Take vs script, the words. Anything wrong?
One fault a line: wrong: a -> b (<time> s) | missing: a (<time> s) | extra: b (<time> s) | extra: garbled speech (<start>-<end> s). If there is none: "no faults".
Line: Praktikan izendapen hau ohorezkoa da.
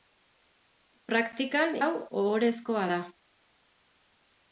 missing: izendapen (1.8 s)